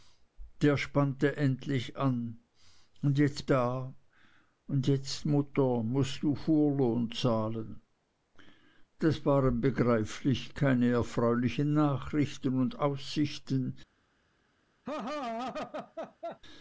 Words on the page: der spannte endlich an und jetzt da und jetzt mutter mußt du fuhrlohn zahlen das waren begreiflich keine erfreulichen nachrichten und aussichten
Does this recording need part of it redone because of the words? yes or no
no